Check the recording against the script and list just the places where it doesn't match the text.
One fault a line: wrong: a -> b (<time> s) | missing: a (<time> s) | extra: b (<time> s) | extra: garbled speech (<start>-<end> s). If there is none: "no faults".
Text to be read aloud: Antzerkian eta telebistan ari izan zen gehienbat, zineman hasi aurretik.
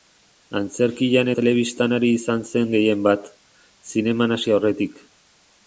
missing: eta (1.3 s)